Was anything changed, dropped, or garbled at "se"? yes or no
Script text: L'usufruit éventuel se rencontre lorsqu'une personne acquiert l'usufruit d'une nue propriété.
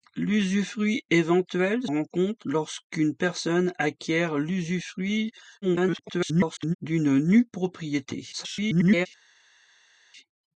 yes